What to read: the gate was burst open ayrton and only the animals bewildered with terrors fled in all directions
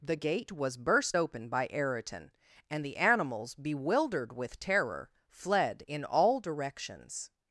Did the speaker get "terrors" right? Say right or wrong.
wrong